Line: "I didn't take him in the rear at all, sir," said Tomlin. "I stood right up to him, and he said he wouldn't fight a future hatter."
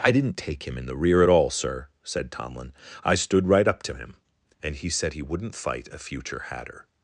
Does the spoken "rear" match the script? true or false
true